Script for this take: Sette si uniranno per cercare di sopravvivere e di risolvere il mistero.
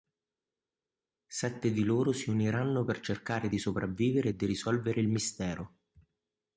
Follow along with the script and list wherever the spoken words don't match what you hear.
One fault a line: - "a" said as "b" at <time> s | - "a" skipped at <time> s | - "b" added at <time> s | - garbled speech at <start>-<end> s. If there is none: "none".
- "di loro" added at 1.7 s